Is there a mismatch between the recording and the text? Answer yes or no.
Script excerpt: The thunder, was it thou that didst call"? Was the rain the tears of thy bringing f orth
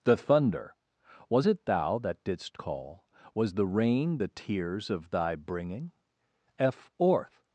no